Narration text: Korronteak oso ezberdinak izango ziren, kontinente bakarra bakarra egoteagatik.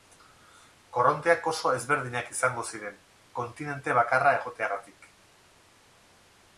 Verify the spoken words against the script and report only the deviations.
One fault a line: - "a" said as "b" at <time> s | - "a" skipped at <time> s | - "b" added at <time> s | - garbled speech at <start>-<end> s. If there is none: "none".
- "bakarra" skipped at 4.3 s